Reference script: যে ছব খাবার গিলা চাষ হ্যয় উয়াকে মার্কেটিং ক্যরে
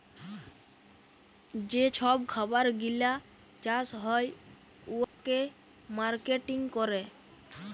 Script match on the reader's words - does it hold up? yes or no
yes